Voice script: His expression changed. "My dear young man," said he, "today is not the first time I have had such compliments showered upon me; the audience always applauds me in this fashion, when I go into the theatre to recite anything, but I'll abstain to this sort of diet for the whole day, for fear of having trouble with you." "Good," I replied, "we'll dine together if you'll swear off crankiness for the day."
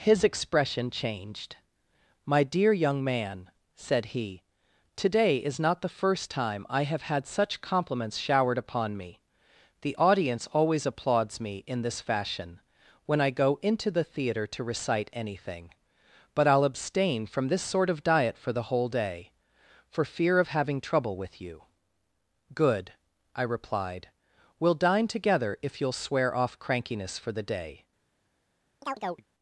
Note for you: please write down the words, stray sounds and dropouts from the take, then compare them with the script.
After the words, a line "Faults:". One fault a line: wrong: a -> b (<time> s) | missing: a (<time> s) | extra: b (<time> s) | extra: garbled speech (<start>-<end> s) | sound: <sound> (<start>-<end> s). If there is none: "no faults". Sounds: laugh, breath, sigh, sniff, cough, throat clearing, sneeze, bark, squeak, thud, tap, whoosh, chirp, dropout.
His expression changed. "My dear young man," said he, "today is not the first time I have had such compliments showered upon me; the audience always applauds me in this fashion, when I go into the theatre to recite anything, but I'll abstain from this sort of diet for the whole day, for fear of having trouble with you." "Good," I replied, "we'll dine together if you'll swear off crankiness for the day."
Faults:
wrong: to -> from (17.3 s)
sound: chirp (28.8-29.3 s)